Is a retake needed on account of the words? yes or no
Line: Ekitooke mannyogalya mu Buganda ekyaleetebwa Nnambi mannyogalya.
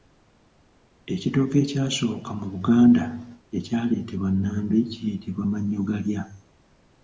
yes